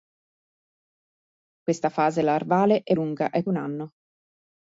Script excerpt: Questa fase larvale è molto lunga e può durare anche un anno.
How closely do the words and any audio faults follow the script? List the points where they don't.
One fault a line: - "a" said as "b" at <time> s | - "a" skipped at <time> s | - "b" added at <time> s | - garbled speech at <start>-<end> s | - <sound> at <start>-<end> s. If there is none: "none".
- "molto" skipped at 2.9 s
- "può durare anche" skipped at 3.4 s